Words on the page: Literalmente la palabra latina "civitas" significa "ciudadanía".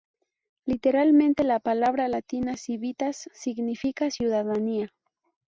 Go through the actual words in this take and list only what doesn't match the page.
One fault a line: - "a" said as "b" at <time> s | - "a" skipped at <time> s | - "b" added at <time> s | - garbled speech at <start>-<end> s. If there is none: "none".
none